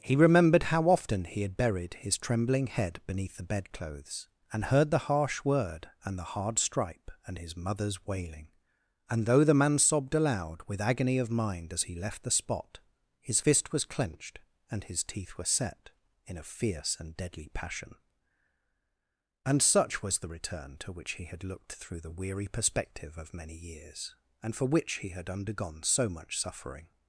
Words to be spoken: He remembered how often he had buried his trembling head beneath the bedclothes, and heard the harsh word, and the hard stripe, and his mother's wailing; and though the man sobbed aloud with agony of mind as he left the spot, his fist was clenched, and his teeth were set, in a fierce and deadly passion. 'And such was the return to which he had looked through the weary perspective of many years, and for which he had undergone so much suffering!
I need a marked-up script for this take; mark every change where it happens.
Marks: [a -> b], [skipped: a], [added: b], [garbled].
He remembered how often he had buried his trembling head beneath the bedclothes, and heard the harsh word, and the hard stripe, and his mother's wailing; and though the man sobbed aloud with agony of mind as he left the spot, his fist was clenched, and his teeth were set, in a fierce and deadly passion. 'And such was the return to which he had looked through the weary perspective of many years, and for which he had undergone so much suffering!